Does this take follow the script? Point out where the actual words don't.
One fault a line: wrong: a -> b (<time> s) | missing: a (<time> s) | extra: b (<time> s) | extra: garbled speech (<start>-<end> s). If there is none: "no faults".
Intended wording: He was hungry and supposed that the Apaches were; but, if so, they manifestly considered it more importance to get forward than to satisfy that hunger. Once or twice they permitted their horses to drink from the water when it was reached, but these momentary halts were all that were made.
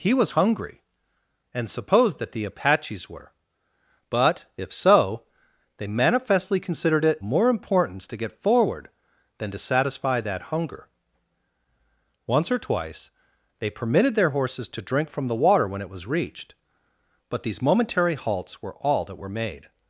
no faults